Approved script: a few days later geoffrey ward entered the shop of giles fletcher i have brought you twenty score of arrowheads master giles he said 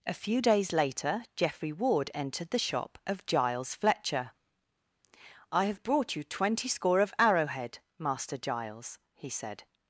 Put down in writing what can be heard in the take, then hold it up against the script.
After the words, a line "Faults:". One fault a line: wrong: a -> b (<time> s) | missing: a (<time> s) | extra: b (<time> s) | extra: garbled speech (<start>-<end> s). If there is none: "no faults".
a few days later geoffrey ward entered the shop of giles fletcher i have brought you twenty score of arrowhead master giles he said
Faults:
wrong: arrowheads -> arrowhead (7.2 s)